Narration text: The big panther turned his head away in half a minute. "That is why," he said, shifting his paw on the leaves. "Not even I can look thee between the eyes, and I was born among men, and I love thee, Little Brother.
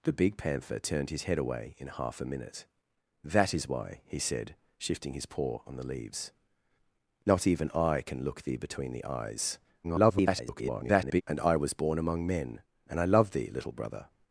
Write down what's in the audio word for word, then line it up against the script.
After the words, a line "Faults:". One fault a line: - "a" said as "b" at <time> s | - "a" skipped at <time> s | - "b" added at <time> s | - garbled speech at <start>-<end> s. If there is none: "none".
The big panther turned his head away in half a minute. "That is why," he said, shifting his paw on the leaves. "Not even I can look thee between the eyes, [garbled] and I was born among men, and I love thee, Little Brother.
Faults:
- garbled speech at 9.8-11.2 s